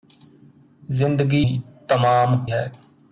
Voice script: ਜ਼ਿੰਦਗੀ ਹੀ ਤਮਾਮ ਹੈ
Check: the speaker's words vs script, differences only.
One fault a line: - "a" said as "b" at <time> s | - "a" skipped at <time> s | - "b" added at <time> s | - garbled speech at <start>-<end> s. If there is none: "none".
none